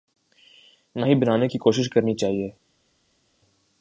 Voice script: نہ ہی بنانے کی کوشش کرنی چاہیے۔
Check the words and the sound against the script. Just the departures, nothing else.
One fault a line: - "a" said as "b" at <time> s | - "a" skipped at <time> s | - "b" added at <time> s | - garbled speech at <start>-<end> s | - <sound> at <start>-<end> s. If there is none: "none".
none